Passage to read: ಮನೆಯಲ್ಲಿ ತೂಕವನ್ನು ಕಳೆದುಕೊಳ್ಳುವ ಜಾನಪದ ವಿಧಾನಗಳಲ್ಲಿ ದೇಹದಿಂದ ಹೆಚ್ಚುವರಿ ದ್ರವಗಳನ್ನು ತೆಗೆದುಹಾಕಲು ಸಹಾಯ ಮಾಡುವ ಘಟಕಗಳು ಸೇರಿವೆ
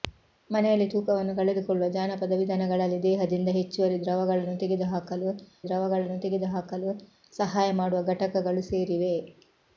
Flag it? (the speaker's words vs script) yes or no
yes